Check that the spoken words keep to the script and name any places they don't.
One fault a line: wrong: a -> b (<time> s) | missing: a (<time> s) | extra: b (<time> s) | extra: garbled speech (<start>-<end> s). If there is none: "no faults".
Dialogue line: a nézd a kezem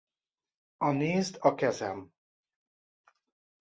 no faults